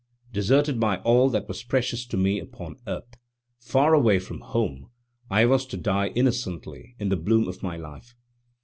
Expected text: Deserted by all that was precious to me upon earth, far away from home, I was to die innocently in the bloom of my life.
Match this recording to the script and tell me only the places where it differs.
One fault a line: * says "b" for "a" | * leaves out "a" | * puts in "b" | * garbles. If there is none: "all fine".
all fine